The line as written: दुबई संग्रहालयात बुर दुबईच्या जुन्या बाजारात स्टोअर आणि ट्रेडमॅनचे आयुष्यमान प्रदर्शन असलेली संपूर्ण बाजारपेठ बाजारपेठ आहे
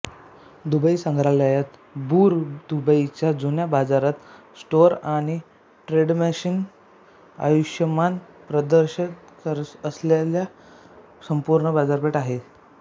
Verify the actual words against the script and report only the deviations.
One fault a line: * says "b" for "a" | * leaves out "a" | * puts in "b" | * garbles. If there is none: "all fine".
* leaves out "बाजारपेठ"